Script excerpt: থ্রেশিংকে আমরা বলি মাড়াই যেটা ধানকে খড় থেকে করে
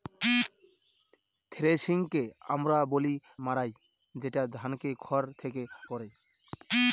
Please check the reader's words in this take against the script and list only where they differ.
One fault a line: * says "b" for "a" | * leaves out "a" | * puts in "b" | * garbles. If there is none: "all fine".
all fine